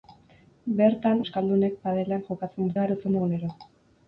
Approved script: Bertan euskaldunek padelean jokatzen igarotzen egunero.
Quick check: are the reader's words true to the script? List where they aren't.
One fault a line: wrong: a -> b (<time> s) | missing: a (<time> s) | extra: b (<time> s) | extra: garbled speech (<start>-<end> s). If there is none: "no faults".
no faults